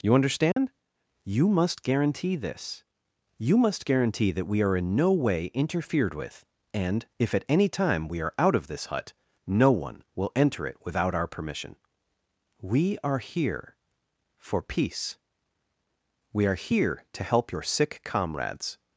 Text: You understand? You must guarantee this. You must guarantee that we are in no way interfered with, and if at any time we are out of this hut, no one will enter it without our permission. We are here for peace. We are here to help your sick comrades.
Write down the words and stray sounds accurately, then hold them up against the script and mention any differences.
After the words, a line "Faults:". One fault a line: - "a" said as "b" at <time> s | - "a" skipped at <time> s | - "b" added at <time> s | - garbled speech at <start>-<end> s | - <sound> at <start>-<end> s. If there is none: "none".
You understand? You must guarantee this. You must guarantee that we are in no way interfered with, and if at any time we are out of this hut, no one will enter it without our permission. We are here for peace. We are here to help your sick comrades.
Faults:
- dropout at 0.5-0.6 s